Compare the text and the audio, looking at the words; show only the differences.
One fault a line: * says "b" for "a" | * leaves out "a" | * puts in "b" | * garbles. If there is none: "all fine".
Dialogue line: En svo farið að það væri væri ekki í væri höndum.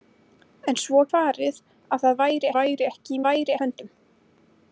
all fine